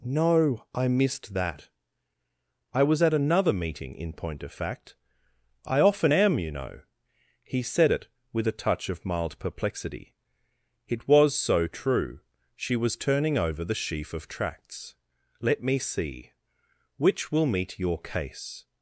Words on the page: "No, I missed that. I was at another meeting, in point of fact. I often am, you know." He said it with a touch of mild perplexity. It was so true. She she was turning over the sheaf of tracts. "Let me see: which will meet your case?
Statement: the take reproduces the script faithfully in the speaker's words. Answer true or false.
false